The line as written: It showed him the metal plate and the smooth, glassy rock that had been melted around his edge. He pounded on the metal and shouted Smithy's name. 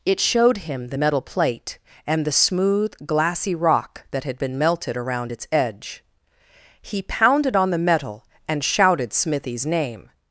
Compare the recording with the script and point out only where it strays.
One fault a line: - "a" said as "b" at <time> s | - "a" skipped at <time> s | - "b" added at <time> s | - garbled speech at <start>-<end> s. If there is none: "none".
- "his" said as "its" at 5.3 s